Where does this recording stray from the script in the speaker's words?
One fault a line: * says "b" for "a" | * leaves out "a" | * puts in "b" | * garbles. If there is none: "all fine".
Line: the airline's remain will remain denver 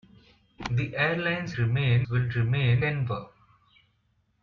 all fine